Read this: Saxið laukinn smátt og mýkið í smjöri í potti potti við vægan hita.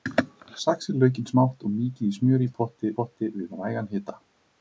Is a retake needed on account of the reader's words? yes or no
no